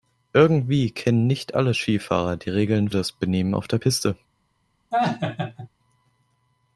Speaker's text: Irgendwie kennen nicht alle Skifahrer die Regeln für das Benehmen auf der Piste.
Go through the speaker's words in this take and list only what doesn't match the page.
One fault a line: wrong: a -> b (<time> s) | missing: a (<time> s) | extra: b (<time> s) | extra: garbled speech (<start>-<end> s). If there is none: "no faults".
missing: für (2.9 s)